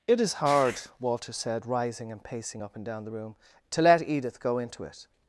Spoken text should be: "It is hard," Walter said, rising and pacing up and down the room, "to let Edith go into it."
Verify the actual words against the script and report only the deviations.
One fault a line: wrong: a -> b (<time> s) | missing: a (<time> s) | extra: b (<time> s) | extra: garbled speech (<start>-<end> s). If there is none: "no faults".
no faults